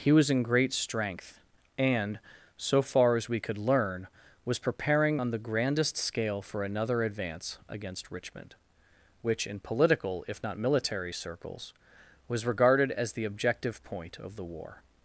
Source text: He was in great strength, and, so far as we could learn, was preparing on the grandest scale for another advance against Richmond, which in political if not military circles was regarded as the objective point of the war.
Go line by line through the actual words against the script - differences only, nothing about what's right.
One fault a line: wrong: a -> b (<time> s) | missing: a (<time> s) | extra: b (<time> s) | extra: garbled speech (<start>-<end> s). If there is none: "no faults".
no faults